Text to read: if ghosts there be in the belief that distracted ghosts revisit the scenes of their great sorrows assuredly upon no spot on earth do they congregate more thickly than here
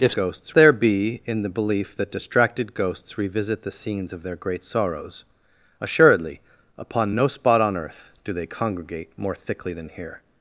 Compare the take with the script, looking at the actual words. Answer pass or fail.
pass